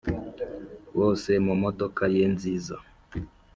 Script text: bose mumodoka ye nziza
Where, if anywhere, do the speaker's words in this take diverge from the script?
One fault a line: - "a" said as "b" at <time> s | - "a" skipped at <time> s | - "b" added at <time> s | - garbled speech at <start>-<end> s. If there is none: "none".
none